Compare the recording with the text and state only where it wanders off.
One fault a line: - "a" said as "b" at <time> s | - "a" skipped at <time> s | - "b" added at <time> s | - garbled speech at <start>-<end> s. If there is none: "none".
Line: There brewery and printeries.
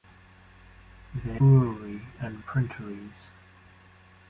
none